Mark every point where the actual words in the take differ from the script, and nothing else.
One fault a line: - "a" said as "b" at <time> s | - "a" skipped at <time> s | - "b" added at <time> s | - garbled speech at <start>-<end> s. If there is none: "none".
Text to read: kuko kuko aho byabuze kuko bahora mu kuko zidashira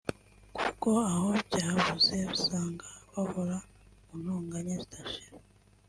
- "kuko" skipped at 0.9 s
- "kuko" said as "usanga" at 2.4 s
- "kuko" said as "ntonganya" at 4.2 s